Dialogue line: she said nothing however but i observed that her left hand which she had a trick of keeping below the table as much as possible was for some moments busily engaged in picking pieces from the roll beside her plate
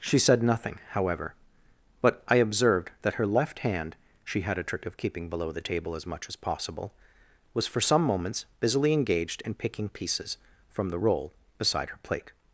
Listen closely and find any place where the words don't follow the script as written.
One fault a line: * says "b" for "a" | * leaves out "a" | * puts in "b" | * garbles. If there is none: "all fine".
* leaves out "which"